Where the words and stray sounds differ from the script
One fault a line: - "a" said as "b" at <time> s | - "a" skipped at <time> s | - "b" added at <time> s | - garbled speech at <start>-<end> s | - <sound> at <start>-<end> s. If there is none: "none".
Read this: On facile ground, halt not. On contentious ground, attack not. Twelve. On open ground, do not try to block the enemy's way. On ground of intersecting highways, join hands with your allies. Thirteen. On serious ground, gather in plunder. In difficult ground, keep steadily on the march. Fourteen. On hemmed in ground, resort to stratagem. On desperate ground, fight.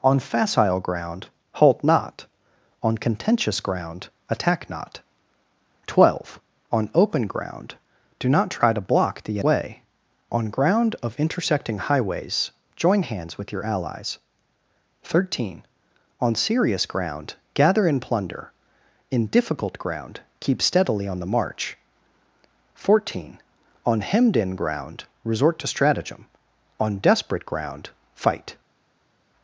- "enemy's" skipped at 9.4 s